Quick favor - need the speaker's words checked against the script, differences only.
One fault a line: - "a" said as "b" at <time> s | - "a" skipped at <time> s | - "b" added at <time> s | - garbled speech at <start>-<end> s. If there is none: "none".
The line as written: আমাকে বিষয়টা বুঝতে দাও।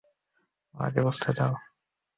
- "বিষয়টা" skipped at 1.0 s